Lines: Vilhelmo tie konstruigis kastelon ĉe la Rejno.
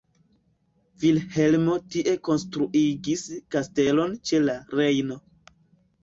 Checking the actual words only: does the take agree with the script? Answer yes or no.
yes